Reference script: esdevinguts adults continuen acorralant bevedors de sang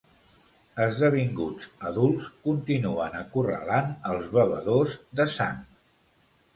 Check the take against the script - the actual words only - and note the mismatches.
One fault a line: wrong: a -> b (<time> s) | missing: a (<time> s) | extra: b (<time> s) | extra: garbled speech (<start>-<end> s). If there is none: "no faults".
extra: els (4.2 s)